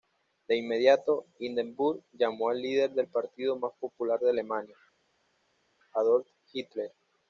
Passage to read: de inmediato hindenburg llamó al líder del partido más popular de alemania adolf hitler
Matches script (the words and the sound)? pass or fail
pass